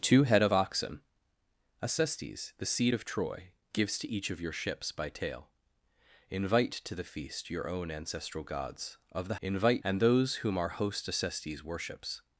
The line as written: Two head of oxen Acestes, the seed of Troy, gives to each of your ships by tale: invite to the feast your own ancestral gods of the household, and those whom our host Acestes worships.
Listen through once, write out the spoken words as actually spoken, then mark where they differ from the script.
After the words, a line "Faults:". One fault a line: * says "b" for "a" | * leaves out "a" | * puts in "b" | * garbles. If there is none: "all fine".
Two head of oxen Acestes, the seed of Troy, gives to each of your ships by tale: invite to the feast your own ancestral gods of the invite, and those whom our host Acestes worships.
Faults:
* says "invite" for "household"